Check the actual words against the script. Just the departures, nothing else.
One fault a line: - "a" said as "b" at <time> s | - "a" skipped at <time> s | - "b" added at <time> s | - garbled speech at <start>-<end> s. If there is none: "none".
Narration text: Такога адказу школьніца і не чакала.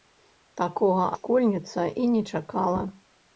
- "адказу" skipped at 1.0 s